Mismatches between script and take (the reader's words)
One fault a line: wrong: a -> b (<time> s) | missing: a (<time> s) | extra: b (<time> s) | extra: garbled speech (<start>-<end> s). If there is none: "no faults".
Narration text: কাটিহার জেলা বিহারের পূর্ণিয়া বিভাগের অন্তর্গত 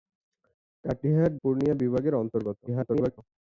missing: জেলা বিহারের (1.3 s)
extra: garbled speech (2.7-3.2 s)